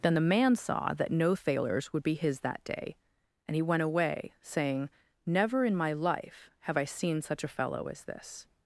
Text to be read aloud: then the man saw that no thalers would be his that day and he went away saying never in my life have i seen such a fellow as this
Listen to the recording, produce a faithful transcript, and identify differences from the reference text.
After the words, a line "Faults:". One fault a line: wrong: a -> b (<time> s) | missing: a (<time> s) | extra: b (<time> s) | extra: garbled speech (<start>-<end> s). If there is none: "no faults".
then the man saw that no thalers would be his that day and he went away saying never in my life have i seen such a fellow as this
Faults:
no faults